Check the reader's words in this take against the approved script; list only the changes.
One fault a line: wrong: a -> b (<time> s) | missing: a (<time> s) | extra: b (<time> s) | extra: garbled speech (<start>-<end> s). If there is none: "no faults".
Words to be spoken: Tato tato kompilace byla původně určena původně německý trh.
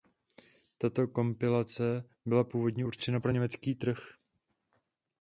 missing: tato (1.1 s)
wrong: původně -> pro (3.2 s)